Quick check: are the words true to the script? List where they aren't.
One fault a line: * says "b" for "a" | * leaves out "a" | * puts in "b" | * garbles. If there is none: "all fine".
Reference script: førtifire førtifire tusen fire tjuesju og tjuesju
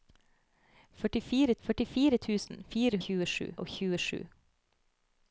all fine